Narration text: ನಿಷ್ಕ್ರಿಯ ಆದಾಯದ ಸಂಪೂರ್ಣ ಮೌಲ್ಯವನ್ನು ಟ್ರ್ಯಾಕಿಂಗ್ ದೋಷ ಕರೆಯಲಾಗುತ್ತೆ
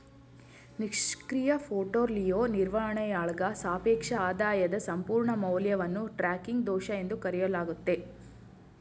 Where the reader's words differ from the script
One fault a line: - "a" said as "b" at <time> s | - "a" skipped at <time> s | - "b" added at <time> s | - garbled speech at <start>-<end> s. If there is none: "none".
- "ಪೋರ್ಟ್ಫೋಲಿಯೋ ನಿರ್ವಹಣೆಯಾಳ್ಗ ಸಾಪೇಕ್ಷ" added at 1.6 s
- "ಎಂದು" added at 7.0 s